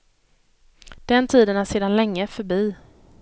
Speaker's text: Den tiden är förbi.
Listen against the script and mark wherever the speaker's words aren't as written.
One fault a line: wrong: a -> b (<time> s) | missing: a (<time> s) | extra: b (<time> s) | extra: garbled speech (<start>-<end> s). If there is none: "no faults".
extra: sedan länge (1.6 s)